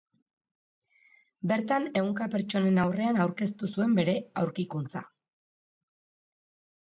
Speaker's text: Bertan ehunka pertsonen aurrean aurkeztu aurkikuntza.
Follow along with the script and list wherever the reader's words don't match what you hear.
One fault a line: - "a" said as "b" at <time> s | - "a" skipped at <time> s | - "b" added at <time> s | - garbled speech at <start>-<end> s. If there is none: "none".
- "zuen bere" added at 3.7 s